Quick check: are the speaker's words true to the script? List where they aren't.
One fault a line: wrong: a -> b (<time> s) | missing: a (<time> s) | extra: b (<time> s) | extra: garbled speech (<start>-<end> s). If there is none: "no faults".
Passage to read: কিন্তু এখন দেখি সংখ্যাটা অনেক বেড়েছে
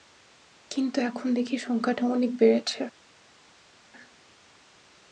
no faults